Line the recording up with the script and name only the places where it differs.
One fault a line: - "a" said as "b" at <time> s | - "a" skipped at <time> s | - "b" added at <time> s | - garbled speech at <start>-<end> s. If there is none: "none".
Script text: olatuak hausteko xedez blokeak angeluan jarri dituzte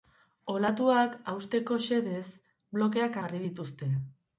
- "angeluan" skipped at 3.2 s